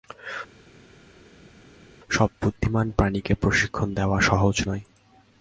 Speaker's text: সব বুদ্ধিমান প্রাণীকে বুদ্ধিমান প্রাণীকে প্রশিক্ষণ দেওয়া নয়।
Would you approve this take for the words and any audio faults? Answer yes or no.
no